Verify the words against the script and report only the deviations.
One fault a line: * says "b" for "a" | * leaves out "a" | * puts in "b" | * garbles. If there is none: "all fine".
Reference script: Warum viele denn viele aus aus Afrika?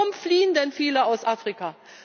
* says "fliehen" for "viele"
* leaves out "aus"